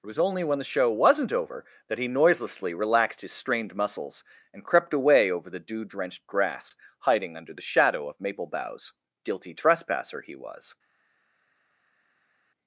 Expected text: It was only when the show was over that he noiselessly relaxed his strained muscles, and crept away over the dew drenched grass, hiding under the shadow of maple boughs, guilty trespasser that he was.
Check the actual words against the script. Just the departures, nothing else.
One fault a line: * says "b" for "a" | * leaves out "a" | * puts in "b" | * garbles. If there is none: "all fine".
* says "wasn't" for "was"
* leaves out "that"